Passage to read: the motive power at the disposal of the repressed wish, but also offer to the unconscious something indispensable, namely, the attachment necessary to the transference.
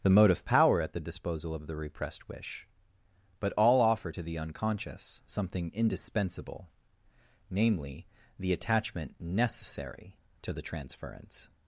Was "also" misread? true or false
true